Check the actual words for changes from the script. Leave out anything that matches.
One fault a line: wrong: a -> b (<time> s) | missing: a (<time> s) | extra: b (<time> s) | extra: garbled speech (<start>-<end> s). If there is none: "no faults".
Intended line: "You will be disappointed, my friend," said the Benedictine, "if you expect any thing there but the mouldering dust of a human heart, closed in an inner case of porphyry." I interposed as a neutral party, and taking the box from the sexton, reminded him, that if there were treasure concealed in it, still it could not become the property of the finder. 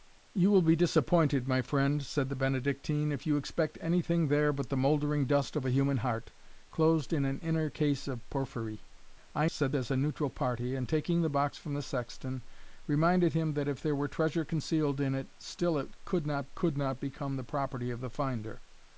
wrong: interposed -> said (9.4 s)
extra: could not (16.5 s)